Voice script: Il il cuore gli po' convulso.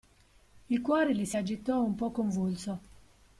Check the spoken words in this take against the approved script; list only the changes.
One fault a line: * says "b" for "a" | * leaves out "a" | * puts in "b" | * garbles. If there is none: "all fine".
* leaves out "il"
* puts in "si agitò un"